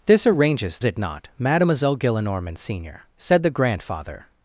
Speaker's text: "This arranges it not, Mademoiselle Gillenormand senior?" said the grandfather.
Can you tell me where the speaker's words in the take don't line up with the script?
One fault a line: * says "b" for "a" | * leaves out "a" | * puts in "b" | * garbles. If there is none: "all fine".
all fine